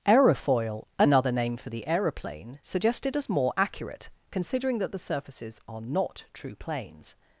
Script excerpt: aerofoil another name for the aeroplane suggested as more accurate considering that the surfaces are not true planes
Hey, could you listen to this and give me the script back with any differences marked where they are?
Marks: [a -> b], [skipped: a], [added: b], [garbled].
aerofoil another name for the aeroplane suggested as more accurate considering that the surfaces are not true planes